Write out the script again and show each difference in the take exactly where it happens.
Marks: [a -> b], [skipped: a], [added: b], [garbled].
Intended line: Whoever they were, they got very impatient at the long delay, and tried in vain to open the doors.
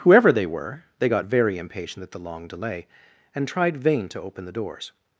Whoever they were, they got very impatient at the long delay, and tried [skipped: in] vain to open the doors.